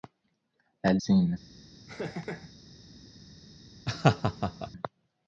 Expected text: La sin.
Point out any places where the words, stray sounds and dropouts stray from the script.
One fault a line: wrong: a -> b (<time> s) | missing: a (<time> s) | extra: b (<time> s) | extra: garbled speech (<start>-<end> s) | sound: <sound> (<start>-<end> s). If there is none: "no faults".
sound: laugh (1.9-2.5 s)
sound: laugh (3.9-4.7 s)